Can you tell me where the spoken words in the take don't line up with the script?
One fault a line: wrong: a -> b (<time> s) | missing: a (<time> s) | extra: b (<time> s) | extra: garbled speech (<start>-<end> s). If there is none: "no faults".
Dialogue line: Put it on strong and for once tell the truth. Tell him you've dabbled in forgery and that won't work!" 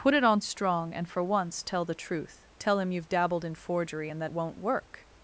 no faults